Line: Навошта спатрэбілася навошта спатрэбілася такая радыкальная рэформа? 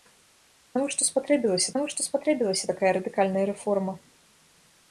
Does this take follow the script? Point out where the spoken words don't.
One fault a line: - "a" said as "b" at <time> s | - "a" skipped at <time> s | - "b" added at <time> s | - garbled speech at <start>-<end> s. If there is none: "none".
none